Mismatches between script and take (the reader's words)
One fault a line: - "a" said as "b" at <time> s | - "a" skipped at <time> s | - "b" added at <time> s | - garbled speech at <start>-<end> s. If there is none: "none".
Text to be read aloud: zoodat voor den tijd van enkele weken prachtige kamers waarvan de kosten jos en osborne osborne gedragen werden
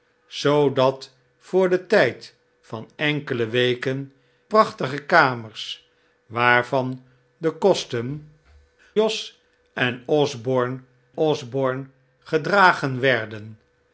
none